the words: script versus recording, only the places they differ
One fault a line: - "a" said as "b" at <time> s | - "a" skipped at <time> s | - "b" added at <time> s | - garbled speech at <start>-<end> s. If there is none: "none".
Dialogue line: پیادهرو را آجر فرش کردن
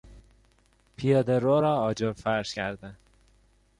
none